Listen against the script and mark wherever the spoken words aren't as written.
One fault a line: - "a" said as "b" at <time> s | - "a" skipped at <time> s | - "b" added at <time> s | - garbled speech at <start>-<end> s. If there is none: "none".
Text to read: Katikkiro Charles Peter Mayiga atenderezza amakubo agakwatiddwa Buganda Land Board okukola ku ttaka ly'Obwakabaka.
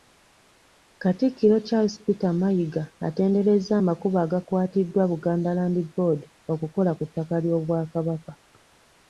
none